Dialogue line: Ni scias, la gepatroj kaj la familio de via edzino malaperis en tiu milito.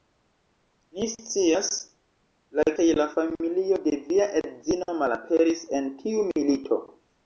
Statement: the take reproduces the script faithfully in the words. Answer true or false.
false